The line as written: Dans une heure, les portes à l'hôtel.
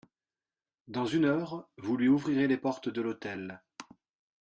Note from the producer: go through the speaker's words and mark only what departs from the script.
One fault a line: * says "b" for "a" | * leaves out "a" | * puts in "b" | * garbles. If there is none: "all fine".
* puts in "vous lui ouvrirez"
* says "de" for "à"